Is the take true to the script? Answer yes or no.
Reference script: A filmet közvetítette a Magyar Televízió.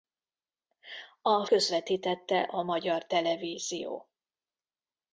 no